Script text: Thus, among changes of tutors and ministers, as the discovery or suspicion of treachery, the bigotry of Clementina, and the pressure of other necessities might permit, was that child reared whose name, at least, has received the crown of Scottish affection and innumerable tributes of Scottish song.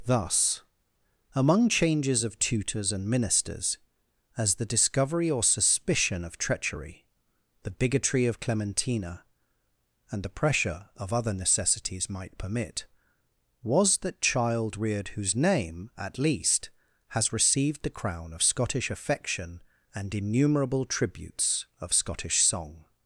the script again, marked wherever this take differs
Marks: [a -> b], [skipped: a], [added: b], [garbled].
Thus, among changes of tutors and ministers, as the discovery or suspicion of treachery, the bigotry of Clementina, and the pressure of other necessities might permit, was that child reared whose name, at least, has received the crown of Scottish affection and innumerable tributes of Scottish song.